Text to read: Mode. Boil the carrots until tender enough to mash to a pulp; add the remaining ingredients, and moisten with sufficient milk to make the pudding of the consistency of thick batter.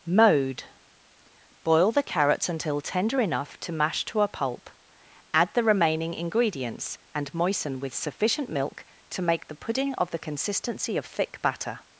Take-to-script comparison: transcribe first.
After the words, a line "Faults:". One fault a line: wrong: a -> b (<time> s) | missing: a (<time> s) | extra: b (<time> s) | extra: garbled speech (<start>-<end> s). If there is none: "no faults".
Mode. Boil the carrots until tender enough to mash to a pulp; add the remaining ingredients, and moisten with sufficient milk to make the pudding of the consistency of thick batter.
Faults:
no faults